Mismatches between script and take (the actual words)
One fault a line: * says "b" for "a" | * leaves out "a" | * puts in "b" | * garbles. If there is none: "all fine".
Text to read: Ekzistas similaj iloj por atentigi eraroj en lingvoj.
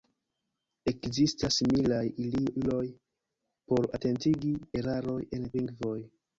all fine